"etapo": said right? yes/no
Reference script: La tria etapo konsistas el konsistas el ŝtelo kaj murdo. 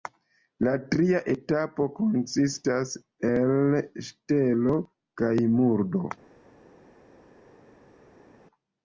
yes